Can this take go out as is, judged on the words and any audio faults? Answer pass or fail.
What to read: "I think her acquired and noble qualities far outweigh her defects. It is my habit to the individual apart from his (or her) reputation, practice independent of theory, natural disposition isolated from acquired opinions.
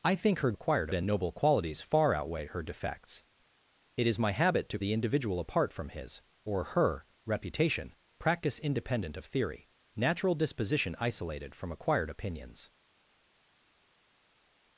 pass